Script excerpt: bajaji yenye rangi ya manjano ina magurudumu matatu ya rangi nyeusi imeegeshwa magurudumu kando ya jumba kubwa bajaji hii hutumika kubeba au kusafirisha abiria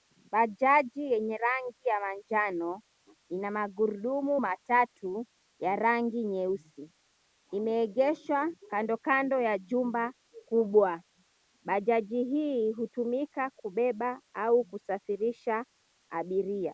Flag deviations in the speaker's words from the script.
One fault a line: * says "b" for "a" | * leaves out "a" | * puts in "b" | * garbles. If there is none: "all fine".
* says "kando" for "magurudumu"